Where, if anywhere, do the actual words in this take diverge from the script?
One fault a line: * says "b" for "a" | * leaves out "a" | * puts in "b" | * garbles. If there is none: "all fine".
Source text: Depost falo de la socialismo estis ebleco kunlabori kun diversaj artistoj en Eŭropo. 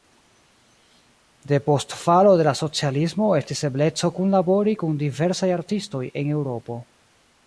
all fine